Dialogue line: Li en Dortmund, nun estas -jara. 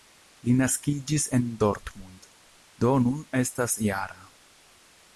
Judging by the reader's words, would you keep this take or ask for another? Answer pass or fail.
fail